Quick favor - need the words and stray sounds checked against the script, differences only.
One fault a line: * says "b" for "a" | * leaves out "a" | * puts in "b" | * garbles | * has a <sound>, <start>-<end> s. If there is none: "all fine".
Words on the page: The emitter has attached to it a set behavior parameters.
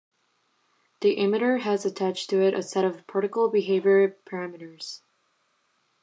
* puts in "of particle"